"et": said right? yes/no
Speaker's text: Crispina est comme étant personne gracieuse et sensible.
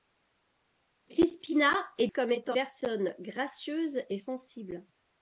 yes